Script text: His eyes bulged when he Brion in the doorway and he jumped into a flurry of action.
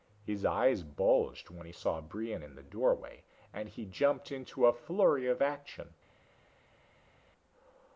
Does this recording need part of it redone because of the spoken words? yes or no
yes